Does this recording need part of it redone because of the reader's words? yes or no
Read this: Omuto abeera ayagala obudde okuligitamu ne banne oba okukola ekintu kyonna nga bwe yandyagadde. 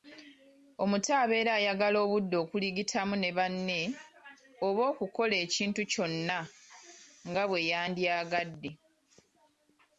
no